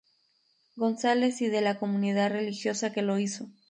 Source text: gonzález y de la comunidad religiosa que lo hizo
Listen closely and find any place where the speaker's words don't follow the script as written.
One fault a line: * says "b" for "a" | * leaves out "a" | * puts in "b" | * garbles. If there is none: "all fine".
all fine